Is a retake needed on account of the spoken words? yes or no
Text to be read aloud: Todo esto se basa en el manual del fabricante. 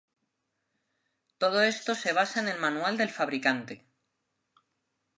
no